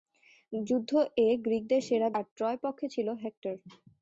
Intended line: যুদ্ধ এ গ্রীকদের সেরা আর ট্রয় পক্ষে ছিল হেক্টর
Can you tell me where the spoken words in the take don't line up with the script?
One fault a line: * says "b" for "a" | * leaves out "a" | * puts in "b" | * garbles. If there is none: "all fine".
all fine